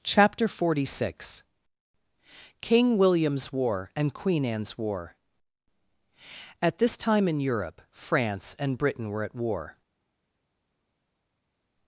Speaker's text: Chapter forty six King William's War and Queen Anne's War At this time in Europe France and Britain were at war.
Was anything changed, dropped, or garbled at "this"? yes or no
no